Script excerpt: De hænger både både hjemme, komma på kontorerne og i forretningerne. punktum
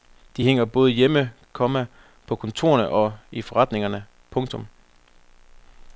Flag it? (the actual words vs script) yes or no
yes